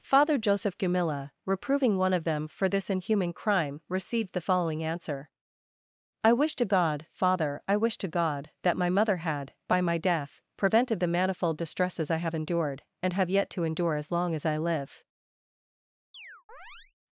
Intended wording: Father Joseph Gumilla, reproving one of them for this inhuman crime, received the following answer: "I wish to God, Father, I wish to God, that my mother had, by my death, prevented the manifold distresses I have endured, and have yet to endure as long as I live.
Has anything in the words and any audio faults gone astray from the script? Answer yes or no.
yes